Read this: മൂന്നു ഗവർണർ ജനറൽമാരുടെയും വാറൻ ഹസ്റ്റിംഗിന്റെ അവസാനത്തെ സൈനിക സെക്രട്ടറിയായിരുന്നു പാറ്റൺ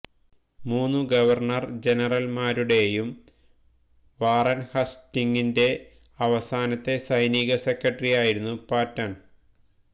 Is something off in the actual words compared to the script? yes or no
no